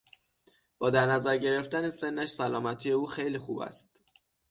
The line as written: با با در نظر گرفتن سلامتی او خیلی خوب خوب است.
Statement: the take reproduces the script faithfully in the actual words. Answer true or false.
false